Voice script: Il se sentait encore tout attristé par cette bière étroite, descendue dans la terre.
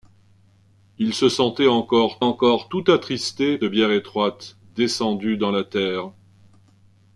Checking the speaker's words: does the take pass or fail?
fail